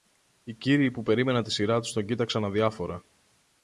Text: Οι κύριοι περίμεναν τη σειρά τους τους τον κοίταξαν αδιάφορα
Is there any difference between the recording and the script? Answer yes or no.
yes